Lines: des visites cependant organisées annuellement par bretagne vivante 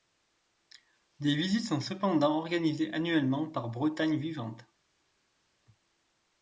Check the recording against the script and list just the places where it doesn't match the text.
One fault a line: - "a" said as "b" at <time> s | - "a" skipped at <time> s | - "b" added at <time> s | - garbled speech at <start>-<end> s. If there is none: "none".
- "sont" added at 1.7 s